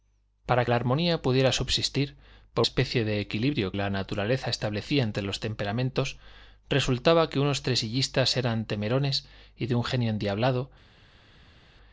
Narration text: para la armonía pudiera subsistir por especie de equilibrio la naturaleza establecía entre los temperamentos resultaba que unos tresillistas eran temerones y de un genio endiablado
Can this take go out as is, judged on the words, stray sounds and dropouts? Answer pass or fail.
pass